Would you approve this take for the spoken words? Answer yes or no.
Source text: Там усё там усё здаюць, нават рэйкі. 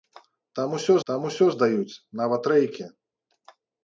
yes